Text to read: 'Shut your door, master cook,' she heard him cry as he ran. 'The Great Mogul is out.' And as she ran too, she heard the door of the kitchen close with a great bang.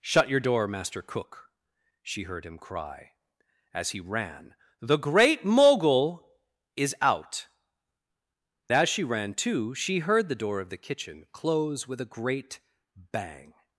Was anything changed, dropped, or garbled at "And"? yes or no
yes